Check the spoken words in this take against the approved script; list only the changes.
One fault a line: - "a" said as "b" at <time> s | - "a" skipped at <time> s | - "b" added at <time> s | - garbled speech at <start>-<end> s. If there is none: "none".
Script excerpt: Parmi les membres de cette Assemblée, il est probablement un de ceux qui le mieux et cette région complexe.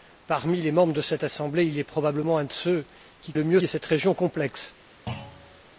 none